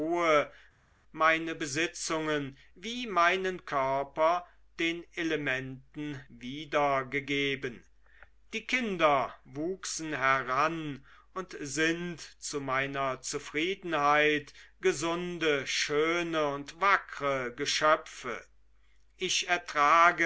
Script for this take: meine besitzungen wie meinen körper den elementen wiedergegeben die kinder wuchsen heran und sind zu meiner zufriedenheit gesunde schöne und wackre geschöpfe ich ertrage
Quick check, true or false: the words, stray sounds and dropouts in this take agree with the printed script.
true